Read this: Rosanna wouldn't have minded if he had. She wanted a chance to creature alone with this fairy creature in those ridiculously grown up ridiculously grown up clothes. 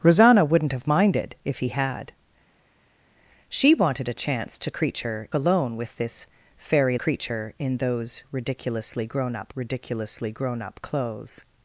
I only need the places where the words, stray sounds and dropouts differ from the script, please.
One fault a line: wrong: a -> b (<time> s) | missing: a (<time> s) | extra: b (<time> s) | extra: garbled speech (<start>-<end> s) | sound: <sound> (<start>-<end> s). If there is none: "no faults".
no faults